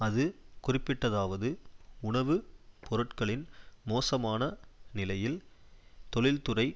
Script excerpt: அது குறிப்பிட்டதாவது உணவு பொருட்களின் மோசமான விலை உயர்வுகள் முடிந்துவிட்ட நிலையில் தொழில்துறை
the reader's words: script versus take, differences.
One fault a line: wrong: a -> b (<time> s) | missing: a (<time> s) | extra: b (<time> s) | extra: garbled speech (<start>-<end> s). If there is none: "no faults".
missing: விலை உயர்வுகள் முடிந்துவிட்ட (4.4 s)